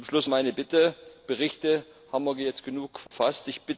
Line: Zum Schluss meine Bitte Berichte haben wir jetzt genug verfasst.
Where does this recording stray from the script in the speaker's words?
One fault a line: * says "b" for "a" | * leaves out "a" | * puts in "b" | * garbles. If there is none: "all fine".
all fine